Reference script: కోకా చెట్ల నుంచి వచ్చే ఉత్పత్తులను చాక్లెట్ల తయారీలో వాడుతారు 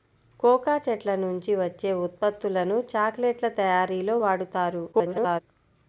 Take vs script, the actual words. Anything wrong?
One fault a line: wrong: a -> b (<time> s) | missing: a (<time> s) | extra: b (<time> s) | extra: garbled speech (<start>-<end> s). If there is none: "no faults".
extra: garbled speech (4.9-5.4 s)